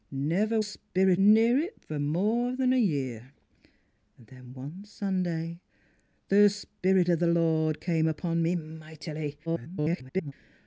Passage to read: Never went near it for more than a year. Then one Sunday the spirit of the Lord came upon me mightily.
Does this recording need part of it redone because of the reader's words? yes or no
yes